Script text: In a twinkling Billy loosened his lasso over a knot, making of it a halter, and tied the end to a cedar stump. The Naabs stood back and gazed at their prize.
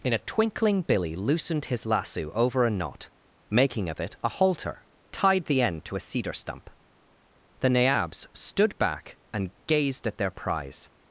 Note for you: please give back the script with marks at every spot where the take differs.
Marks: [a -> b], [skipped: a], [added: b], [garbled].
In a twinkling Billy loosened his lasso over a knot, making of it a halter, [skipped: and] tied the end to a cedar stump. The Naabs stood back and gazed at their prize.